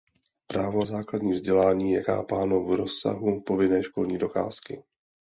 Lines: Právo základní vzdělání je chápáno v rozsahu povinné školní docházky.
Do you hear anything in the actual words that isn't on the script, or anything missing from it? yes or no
no